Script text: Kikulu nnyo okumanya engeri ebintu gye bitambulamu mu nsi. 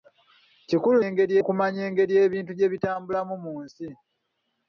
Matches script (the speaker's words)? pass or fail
fail